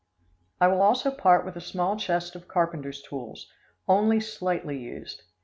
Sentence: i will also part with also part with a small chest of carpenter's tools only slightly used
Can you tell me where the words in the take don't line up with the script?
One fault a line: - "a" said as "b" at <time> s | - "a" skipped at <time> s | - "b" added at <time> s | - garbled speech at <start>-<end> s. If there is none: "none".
- "also part with" skipped at 1.6 s